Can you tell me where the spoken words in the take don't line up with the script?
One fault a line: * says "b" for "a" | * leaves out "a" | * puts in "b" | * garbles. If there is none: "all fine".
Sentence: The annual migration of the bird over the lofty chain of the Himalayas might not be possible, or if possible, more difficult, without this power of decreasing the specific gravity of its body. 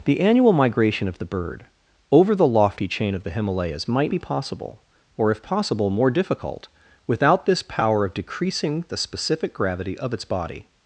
* leaves out "not"